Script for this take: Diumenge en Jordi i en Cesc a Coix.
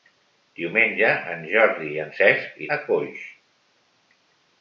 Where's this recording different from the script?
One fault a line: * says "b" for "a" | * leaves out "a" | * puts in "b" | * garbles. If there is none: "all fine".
all fine